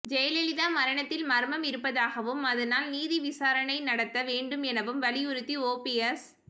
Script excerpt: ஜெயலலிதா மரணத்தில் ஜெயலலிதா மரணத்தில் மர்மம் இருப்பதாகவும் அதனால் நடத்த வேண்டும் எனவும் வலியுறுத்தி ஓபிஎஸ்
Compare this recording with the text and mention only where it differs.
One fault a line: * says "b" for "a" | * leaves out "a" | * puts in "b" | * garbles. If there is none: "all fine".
* leaves out "ஜெயலலிதா மரணத்தில்"
* puts in "நீதி விசாரணை"